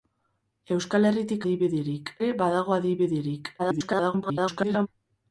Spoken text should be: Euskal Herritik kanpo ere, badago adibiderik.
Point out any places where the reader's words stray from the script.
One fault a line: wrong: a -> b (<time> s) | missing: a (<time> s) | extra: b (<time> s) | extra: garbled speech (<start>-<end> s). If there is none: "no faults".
wrong: kanpo -> adibiderik (1.4 s)
extra: garbled speech (3.6-4.9 s)